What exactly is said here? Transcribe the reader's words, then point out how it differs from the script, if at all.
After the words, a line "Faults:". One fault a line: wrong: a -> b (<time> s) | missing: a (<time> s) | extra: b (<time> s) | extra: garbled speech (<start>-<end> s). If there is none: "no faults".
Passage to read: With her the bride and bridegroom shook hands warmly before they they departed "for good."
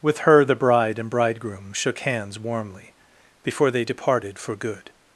With her the bride and bridegroom shook hands warmly before they departed "for good."
Faults:
missing: they (3.9 s)